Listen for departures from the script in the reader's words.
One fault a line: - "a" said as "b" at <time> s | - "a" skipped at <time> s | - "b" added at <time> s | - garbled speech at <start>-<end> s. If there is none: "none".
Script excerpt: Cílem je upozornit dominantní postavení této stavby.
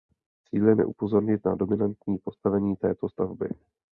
- "na" added at 1.4 s